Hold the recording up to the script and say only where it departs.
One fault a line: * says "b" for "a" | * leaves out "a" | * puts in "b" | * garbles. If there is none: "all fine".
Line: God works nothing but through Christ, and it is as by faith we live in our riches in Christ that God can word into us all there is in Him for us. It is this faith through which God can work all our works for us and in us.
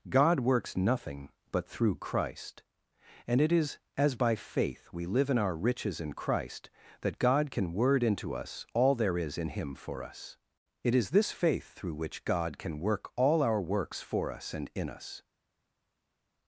all fine